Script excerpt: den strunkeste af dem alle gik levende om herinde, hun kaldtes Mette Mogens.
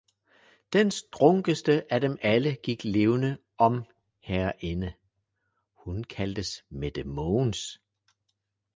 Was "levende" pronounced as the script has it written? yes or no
yes